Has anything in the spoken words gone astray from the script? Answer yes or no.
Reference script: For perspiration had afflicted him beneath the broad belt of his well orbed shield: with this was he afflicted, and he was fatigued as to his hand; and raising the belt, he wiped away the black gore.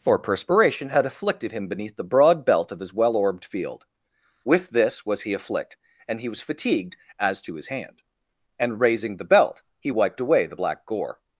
yes